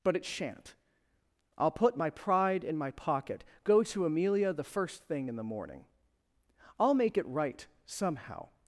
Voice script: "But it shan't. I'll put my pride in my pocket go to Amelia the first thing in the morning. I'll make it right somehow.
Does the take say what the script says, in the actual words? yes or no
yes